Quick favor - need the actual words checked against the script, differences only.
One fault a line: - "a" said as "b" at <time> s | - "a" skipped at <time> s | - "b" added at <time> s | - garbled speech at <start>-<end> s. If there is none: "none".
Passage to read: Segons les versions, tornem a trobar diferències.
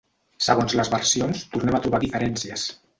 none